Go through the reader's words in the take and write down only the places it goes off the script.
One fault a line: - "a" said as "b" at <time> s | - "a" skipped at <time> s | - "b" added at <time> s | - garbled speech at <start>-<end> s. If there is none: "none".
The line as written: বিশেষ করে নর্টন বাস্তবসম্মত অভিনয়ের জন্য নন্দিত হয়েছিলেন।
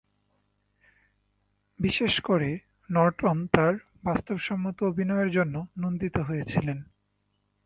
- "তার" added at 3.5 s